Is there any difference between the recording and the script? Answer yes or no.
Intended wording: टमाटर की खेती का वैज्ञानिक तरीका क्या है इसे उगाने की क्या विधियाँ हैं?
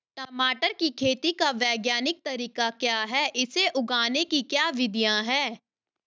no